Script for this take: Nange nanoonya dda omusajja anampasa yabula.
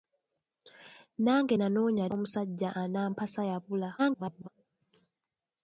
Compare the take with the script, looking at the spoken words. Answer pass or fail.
fail